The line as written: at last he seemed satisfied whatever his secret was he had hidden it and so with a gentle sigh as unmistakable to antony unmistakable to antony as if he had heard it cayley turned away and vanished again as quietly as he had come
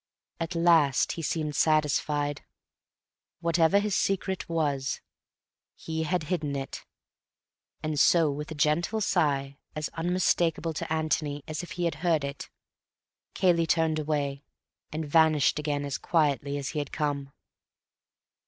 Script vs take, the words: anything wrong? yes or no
yes